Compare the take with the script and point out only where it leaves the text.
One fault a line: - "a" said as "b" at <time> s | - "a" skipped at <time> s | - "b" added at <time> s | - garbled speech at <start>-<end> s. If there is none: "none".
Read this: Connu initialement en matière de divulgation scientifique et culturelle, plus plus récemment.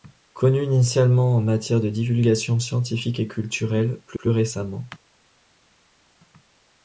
none